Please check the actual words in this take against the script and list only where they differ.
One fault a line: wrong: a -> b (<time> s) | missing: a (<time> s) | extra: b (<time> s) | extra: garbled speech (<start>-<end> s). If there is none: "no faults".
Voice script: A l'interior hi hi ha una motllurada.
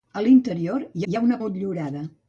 no faults